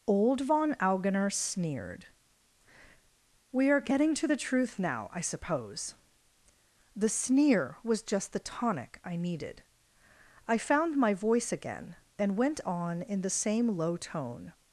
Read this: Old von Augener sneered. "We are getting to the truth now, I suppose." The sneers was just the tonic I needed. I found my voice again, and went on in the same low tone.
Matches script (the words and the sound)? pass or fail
fail